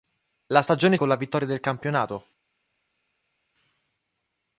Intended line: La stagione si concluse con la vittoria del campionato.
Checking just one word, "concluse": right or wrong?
wrong